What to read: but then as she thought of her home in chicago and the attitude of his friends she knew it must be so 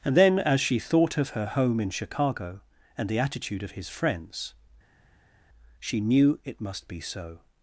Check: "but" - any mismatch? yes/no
yes